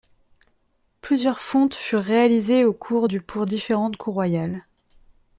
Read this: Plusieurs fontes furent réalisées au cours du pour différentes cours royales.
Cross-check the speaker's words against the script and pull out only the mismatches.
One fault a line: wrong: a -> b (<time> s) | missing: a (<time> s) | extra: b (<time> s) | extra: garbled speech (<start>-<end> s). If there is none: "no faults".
no faults